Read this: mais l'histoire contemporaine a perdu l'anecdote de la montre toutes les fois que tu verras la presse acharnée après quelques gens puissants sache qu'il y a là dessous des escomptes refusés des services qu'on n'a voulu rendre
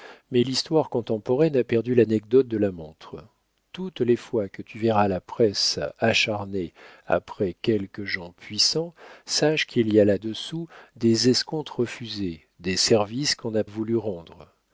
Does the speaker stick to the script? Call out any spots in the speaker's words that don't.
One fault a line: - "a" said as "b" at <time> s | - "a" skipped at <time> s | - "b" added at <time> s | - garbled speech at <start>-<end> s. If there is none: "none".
none